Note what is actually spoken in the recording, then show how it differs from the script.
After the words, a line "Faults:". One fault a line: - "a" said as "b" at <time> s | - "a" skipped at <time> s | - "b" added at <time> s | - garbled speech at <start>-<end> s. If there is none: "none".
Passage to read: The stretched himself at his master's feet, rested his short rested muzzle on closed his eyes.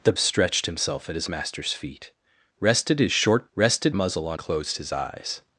The stretched himself at his master's feet, rested his short rested muzzle on closed his eyes.
Faults:
none